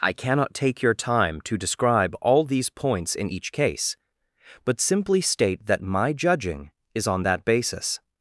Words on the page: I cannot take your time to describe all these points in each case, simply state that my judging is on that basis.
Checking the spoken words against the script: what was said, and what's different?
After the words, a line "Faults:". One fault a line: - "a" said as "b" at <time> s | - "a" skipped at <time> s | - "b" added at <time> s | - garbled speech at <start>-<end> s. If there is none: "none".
I cannot take your time to describe all these points in each case, but simply state that my judging is on that basis.
Faults:
- "but" added at 4.6 s